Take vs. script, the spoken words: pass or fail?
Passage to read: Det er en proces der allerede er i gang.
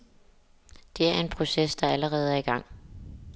pass